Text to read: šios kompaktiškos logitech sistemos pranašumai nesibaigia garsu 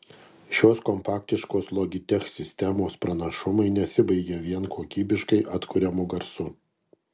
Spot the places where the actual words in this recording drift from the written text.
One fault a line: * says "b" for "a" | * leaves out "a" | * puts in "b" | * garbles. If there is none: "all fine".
* puts in "vien kokybiškai atkuriamu"